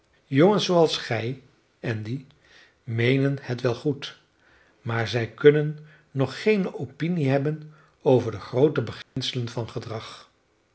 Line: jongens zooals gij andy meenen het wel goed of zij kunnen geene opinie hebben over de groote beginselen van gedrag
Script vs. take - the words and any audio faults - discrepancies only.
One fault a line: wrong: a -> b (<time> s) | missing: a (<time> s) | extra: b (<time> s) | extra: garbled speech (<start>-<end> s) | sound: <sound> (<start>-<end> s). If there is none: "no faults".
wrong: of -> maar (4.8 s)
extra: nog (6.1 s)
sound: dropout (9.0-9.2 s)